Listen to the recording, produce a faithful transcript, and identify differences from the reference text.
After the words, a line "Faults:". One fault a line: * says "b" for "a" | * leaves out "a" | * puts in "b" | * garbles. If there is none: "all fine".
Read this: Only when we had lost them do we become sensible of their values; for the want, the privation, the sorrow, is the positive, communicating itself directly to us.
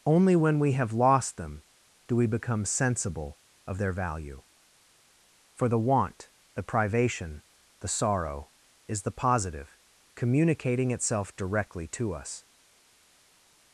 Only when we have lost them do we become sensible of their value; for the want, the privation, the sorrow, is the positive, communicating itself directly to us.
Faults:
* says "have" for "had"
* says "value" for "values"